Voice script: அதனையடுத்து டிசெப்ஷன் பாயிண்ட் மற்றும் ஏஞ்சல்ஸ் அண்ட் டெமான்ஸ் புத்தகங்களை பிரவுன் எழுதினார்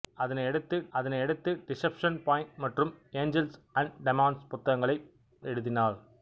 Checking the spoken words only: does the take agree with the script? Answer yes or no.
no